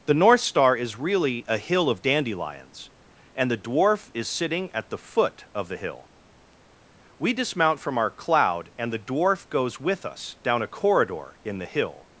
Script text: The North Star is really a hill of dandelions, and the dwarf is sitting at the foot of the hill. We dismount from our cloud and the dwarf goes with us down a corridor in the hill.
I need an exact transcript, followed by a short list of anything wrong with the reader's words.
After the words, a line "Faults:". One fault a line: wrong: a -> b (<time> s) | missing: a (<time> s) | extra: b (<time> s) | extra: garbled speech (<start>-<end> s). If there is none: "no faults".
The North Star is really a hill of dandelions, and the dwarf is sitting at the foot of the hill. We dismount from our cloud and the dwarf goes with us down a corridor in the hill.
Faults:
no faults